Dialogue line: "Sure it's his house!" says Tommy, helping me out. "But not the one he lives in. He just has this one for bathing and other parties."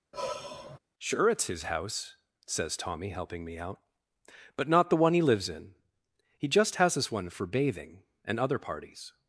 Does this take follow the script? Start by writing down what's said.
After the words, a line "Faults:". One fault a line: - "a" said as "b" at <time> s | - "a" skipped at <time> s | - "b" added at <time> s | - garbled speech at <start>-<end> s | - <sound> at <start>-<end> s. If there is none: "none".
"Sure it's his house!" says Tommy, helping me out. "But not the one he lives in. He just has this one for bathing and other parties."
Faults:
- sigh at 0.1-0.8 s